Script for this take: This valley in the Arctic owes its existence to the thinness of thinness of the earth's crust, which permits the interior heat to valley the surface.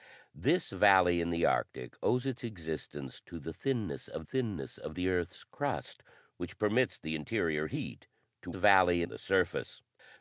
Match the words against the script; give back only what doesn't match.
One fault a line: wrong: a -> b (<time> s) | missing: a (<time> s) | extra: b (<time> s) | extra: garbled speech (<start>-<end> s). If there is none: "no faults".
no faults